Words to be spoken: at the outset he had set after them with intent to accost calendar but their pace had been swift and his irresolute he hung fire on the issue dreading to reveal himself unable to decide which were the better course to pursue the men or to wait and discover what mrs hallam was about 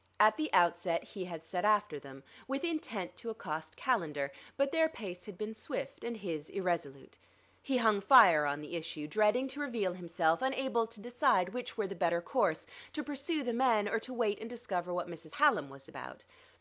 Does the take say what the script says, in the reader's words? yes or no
yes